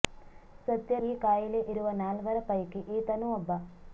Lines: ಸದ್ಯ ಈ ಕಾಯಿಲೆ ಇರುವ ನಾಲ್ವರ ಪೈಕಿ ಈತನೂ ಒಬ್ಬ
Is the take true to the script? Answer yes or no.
yes